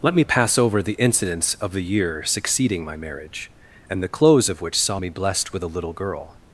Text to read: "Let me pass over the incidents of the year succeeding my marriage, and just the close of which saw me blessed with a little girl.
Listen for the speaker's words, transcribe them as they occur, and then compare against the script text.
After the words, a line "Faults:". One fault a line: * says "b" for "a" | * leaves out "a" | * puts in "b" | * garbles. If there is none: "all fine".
"Let me pass over the incidents of the year succeeding my marriage, and the close of which saw me blessed with a little girl.
Faults:
* leaves out "just"